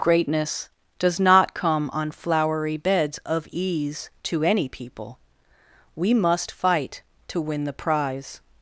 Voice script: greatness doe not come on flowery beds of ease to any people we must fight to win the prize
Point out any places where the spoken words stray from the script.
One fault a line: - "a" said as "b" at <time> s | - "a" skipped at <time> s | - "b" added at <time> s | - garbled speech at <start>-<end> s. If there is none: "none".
- "doe" said as "does" at 1.0 s